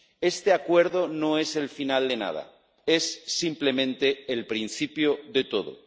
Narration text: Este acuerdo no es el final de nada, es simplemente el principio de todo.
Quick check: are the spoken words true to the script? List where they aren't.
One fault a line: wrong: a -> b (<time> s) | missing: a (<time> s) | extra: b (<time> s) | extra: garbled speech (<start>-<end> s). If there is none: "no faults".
no faults